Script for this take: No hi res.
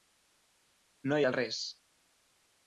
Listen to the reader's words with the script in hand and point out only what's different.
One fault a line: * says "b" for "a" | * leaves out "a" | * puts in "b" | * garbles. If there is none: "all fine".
all fine